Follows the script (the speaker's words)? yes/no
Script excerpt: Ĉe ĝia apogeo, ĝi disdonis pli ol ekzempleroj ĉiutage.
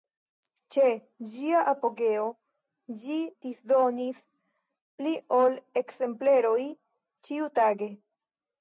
yes